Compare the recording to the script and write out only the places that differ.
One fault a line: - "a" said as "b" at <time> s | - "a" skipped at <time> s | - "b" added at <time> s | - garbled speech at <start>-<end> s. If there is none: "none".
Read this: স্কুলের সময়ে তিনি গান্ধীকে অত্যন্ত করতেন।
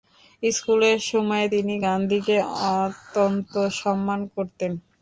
- "সম্মান" added at 3.8 s